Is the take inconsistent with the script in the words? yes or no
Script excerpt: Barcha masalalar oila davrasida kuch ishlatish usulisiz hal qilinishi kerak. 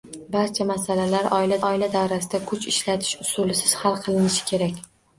yes